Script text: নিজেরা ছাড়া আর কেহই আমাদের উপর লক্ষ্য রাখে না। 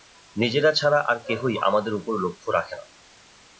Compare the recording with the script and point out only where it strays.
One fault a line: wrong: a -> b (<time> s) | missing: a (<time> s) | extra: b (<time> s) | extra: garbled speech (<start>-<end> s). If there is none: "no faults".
no faults